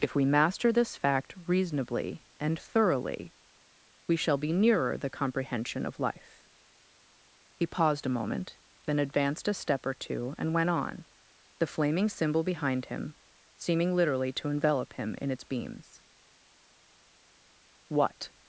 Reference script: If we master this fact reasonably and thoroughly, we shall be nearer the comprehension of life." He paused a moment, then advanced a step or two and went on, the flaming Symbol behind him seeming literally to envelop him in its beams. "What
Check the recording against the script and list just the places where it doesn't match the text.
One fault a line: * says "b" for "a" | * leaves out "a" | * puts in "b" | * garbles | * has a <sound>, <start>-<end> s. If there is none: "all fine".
all fine